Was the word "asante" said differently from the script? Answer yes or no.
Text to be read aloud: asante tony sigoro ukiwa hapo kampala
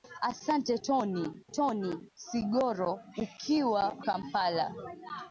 no